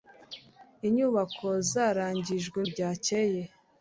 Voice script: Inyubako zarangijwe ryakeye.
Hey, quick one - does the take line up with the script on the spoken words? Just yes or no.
yes